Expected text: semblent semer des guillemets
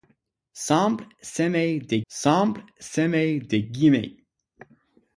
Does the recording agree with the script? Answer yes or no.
no